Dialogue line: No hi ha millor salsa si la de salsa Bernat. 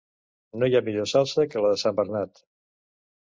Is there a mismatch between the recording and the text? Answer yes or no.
yes